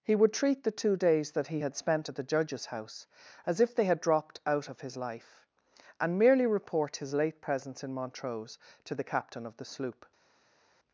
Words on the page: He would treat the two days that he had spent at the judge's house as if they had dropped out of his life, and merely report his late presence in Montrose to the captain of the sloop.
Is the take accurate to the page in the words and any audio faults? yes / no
yes